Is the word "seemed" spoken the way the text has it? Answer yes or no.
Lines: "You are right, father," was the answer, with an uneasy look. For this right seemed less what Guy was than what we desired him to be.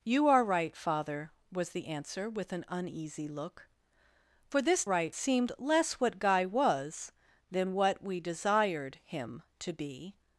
yes